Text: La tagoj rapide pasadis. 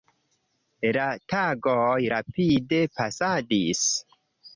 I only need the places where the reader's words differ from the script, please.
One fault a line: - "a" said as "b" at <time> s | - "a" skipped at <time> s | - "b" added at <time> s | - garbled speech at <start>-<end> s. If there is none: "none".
none